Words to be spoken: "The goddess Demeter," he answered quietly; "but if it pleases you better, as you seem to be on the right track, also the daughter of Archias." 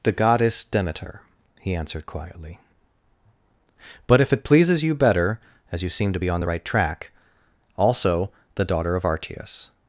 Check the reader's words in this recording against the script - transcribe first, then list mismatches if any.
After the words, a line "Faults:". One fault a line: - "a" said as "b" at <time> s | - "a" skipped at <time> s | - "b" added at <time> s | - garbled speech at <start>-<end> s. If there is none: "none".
"The goddess Demeter," he answered quietly; "but if it pleases you better, as you seem to be on the right track, also the daughter of Archias."
Faults:
none